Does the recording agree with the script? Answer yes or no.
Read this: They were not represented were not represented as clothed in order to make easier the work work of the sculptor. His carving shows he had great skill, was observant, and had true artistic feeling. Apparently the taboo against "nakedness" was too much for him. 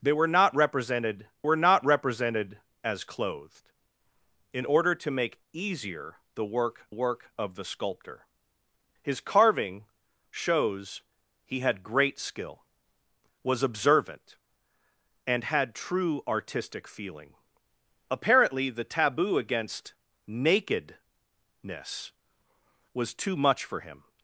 yes